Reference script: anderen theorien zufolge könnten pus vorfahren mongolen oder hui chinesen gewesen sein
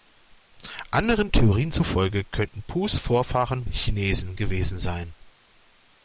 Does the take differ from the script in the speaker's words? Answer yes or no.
yes